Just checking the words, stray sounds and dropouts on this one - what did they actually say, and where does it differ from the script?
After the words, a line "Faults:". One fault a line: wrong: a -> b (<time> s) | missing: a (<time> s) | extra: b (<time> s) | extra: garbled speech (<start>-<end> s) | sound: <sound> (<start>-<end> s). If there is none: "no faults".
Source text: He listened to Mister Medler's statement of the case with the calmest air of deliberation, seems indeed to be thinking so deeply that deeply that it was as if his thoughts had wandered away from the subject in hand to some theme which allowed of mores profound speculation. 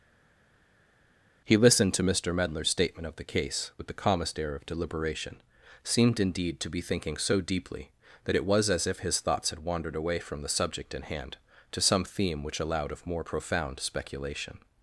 He listened to Mister Medler's statement of the case with the calmest air of deliberation, seemed indeed to be thinking so deeply that it was as if his thoughts had wandered away from the subject in hand to some theme which allowed of more profound speculation.
Faults:
wrong: seems -> seemed (5.8 s)
missing: deeply that (8.4 s)
wrong: mores -> more (13.1 s)